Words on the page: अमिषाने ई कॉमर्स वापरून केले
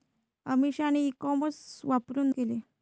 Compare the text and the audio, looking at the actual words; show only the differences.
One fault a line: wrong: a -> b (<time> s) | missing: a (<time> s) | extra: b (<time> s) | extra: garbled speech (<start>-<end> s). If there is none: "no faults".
no faults